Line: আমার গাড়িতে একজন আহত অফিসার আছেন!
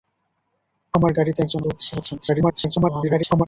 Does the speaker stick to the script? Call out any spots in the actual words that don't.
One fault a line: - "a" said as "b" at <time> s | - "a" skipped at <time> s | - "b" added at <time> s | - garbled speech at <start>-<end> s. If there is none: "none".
- "আহত" skipped at 1.6 s
- garbled speech at 2.2-3.5 s